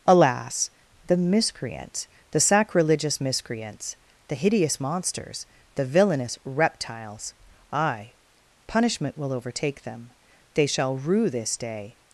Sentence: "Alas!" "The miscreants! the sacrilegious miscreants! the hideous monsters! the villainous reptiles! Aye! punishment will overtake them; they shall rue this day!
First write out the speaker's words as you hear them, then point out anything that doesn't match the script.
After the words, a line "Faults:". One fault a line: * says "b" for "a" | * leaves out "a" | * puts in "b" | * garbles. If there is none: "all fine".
"Alas!" "The miscreants! the sacrilegious miscreants! the hideous monsters! the villainous reptiles! Aye! punishment will overtake them; they shall rue this day!
Faults:
all fine